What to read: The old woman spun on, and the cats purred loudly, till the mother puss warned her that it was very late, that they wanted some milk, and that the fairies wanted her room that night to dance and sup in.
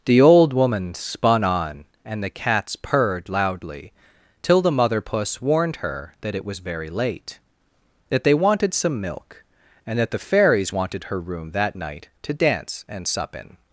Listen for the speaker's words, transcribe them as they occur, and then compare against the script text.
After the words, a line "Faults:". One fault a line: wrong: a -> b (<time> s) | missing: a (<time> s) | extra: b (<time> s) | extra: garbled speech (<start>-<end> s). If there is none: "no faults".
The old woman spun on, and the cats purred loudly, till the mother puss warned her that it was very late, that they wanted some milk, and that the fairies wanted her room that night to dance and sup in.
Faults:
no faults